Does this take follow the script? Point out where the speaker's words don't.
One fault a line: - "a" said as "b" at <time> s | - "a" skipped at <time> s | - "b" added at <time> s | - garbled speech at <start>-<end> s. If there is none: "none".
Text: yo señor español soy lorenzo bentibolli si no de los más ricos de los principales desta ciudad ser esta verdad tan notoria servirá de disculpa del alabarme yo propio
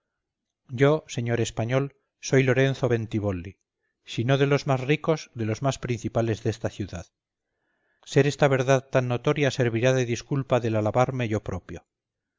- "más" added at 5.6 s